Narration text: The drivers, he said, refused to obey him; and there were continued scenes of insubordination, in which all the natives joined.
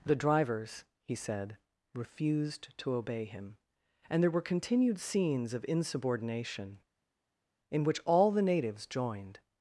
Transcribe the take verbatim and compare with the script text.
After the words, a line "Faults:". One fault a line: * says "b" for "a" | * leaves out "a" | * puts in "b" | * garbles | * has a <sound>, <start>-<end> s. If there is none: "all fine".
The drivers, he said, refused to obey him; and there were continued scenes of insubordination, in which all the natives joined.
Faults:
all fine